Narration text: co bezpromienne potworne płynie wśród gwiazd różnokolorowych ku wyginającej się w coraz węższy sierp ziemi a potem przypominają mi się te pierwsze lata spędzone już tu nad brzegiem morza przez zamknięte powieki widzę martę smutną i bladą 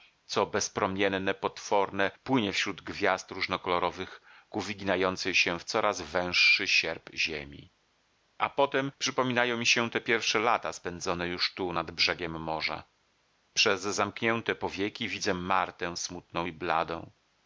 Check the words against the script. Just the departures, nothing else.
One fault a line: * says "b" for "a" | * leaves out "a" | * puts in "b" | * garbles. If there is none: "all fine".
all fine